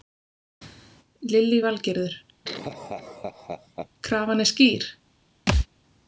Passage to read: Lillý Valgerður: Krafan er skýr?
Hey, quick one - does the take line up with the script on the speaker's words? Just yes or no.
yes